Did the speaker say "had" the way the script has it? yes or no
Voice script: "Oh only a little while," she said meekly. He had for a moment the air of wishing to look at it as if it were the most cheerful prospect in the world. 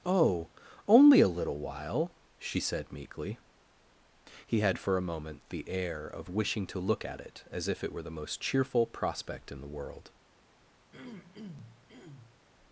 yes